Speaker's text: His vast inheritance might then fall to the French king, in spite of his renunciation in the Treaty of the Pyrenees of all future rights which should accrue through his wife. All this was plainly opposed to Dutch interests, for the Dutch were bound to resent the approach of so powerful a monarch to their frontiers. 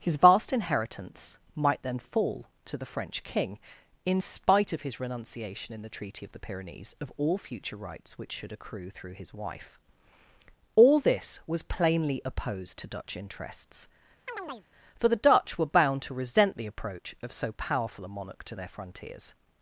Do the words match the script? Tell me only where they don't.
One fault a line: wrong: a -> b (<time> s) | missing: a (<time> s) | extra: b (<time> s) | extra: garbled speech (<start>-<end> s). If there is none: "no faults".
no faults